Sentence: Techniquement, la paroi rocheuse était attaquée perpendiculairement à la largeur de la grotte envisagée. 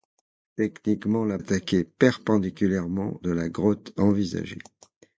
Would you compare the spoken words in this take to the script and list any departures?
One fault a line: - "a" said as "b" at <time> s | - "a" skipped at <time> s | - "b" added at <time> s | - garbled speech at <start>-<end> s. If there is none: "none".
- "paroi rocheuse était" skipped at 1.4 s
- "à la largeur" skipped at 3.2 s